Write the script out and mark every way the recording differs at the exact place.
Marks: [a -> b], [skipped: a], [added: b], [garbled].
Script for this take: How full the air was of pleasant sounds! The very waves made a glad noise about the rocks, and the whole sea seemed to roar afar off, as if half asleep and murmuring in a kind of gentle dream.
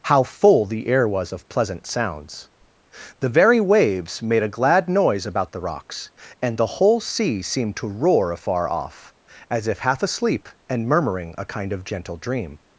How full the air was of pleasant sounds! The very waves made a glad noise about the rocks, and the whole sea seemed to roar afar off, as if half asleep and murmuring [skipped: in] a kind of gentle dream.